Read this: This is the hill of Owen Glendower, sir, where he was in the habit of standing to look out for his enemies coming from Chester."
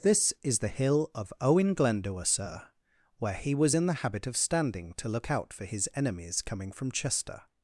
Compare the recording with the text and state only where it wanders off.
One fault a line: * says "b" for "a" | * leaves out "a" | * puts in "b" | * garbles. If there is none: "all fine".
all fine